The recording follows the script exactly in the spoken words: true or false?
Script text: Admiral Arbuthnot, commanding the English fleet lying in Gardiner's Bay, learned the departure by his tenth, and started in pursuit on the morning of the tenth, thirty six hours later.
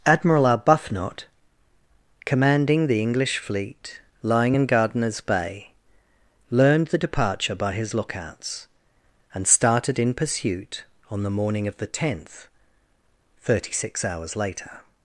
false